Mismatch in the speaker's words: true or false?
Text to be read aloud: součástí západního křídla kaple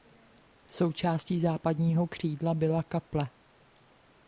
true